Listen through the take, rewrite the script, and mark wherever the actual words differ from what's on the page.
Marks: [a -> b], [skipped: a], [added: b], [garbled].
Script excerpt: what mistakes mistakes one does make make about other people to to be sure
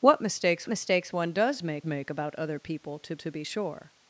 what mistakes mistakes one does make make about other people to to be sure